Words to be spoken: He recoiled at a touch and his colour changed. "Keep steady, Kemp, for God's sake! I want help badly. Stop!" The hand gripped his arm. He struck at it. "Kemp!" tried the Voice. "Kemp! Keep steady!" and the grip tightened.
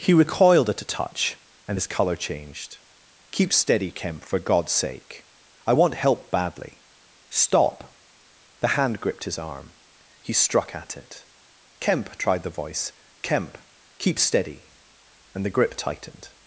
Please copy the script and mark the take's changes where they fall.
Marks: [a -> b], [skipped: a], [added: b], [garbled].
He recoiled at a touch and his colour changed. "Keep steady, Kemp, for God's sake! I want help badly. Stop!" The hand gripped his arm. He struck at it. "Kemp!" tried the Voice. "Kemp! Keep steady!" and the grip tightened.